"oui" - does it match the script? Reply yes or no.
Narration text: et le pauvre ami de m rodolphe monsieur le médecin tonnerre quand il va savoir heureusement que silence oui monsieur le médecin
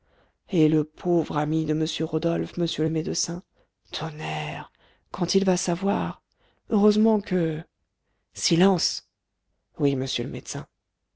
yes